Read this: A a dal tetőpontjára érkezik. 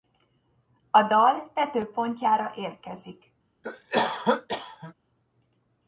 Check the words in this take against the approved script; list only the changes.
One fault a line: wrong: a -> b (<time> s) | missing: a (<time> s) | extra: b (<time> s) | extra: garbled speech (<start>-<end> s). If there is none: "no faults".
missing: a (1.0 s)